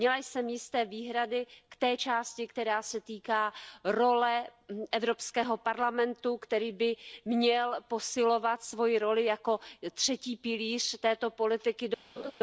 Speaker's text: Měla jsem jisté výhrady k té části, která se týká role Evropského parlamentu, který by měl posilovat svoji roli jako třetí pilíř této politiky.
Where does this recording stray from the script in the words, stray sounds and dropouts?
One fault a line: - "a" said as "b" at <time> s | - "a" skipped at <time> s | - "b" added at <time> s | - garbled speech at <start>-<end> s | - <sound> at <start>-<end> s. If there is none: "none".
- laugh at 12.2-12.3 s